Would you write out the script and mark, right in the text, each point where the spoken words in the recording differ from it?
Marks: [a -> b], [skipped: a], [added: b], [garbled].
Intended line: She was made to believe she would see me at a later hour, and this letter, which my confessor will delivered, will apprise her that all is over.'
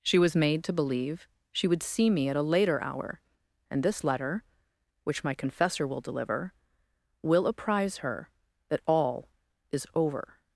She was made to believe she would see me at a later hour, and this letter, which my confessor will [delivered, -> deliver] will apprise her that all is over.'